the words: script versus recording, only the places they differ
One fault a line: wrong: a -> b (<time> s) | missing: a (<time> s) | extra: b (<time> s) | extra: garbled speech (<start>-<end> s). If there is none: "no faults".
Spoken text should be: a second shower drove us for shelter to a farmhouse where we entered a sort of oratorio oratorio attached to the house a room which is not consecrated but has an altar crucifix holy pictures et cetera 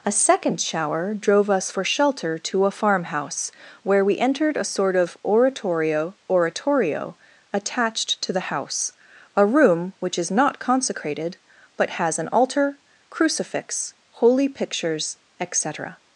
no faults